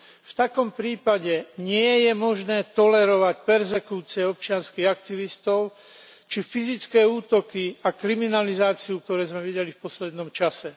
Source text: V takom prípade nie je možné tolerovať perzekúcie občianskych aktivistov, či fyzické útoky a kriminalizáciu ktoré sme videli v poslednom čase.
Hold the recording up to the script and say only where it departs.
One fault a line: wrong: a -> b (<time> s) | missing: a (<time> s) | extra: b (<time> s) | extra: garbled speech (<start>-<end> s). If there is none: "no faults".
no faults